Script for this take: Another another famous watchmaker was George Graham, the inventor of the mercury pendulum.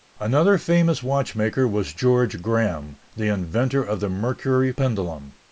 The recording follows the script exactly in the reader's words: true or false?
false